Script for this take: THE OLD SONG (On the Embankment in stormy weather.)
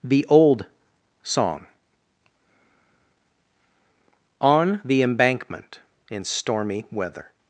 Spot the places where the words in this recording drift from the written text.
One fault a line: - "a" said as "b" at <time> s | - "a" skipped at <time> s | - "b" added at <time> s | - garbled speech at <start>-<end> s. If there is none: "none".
none